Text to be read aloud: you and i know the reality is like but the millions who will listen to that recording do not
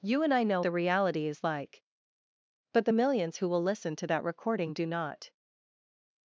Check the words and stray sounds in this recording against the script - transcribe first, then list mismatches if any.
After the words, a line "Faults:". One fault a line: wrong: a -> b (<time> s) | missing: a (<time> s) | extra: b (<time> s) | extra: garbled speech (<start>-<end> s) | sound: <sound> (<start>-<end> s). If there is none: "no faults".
you and i know the reality is like but the millions who will listen to that recording do not
Faults:
no faults